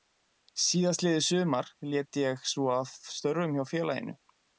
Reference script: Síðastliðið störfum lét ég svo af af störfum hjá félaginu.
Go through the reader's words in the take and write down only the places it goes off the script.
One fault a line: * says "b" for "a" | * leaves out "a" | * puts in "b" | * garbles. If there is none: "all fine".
* says "sumar" for "störfum"
* leaves out "af"